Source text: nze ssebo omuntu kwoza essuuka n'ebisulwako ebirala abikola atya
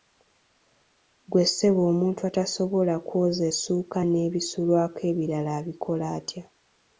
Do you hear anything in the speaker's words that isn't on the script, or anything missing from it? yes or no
yes